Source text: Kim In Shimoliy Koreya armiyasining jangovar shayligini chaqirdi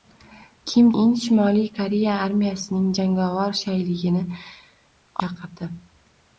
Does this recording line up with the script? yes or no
yes